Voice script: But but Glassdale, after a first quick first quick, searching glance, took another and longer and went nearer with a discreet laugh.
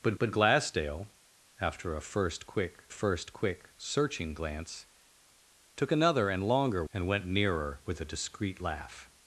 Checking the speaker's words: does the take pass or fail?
pass